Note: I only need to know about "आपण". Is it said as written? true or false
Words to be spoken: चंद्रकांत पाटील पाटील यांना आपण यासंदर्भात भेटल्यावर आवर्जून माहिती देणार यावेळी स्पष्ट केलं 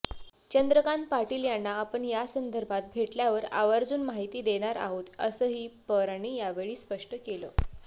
true